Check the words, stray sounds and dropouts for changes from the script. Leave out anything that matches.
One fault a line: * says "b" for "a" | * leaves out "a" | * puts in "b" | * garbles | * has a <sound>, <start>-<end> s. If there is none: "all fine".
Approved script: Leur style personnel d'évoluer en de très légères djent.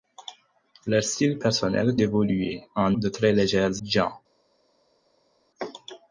all fine